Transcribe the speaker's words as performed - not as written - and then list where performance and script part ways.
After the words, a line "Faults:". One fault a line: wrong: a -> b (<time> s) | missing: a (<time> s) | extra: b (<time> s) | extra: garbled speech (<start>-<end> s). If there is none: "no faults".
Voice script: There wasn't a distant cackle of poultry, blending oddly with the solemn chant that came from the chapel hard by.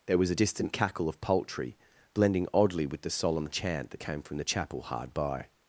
There was a distant cackle of poultry, blending oddly with the solemn chant that came from the chapel hard by.
Faults:
wrong: wasn't -> was (0.2 s)